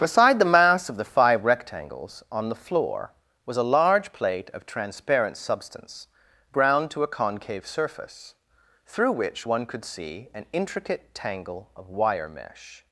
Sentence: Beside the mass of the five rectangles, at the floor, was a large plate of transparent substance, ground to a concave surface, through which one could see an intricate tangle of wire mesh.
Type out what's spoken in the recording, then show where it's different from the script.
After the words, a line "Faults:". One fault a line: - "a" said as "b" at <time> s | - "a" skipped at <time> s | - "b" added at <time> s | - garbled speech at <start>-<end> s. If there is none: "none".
Beside the mass of the five rectangles, on the floor, was a large plate of transparent substance, ground to a concave surface, through which one could see an intricate tangle of wire mesh.
Faults:
- "at" said as "on" at 2.3 s